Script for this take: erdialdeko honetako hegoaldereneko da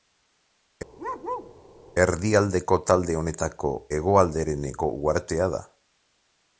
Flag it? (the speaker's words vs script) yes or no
yes